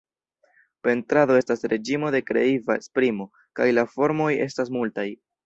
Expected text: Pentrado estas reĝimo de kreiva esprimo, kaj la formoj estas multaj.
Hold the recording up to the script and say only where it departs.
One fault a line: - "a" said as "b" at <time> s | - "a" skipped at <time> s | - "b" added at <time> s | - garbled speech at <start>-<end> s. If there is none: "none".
none